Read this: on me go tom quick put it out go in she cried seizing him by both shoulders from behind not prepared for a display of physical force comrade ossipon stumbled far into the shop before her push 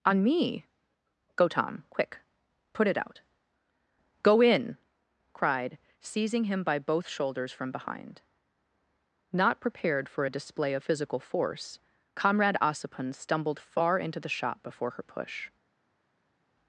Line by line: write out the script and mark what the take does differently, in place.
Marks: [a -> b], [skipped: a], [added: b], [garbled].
on me go tom quick put it out go in [skipped: she] cried seizing him by both shoulders from behind not prepared for a display of physical force comrade ossipon stumbled far into the shop before her push